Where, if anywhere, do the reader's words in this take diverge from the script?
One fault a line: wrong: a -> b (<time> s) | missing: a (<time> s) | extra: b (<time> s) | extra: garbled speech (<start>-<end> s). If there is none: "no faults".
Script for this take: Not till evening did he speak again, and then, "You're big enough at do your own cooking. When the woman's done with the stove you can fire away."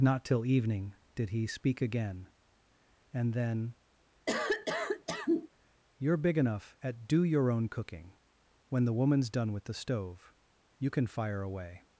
no faults